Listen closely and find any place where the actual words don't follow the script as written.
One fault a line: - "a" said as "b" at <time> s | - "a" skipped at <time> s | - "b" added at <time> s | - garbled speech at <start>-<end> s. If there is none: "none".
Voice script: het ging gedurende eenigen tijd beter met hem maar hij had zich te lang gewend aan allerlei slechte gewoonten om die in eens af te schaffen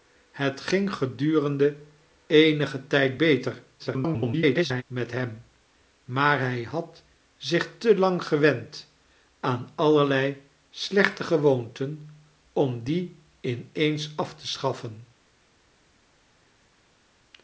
- garbled speech at 3.8-4.8 s